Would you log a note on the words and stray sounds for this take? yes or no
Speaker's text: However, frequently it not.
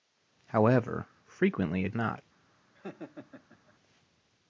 yes